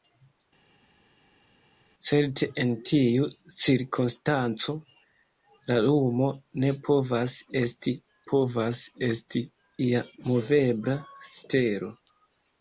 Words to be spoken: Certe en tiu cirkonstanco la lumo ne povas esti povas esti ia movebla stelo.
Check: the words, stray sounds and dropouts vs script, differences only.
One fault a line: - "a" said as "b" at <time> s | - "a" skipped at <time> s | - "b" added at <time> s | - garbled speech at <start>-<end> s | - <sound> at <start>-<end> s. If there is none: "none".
none